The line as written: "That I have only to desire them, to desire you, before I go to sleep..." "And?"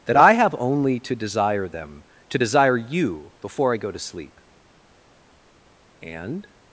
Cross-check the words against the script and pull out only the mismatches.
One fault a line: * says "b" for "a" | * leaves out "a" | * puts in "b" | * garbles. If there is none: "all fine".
all fine